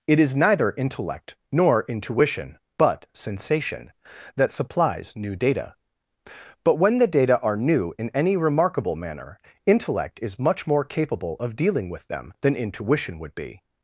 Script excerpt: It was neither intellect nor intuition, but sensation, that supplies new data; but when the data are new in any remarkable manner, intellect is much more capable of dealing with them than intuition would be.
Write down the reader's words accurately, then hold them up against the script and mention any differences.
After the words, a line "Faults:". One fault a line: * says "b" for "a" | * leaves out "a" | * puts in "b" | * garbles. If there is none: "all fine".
It is neither intellect nor intuition, but sensation, that supplies new data; but when the data are new in any remarkable manner, intellect is much more capable of dealing with them than intuition would be.
Faults:
* says "is" for "was"